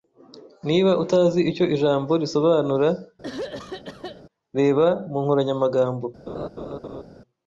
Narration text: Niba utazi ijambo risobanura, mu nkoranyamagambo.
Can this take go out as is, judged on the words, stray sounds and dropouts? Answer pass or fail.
fail